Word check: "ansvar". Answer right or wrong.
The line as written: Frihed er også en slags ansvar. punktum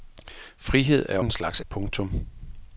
wrong